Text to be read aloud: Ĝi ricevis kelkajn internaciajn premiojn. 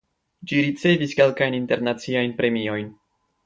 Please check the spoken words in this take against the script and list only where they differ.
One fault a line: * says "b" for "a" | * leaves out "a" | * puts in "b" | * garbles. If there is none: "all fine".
all fine